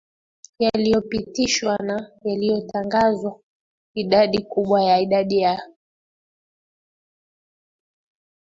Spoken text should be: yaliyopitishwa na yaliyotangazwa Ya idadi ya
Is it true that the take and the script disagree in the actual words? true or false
true